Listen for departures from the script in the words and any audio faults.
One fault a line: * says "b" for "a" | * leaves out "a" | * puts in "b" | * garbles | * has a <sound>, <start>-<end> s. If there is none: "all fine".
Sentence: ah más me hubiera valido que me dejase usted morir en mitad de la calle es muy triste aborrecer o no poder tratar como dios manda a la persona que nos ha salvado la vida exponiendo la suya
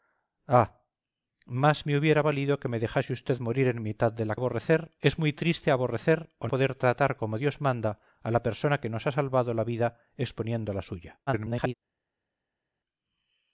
* says "aborrecer" for "calle"
* leaves out "no"
* garbles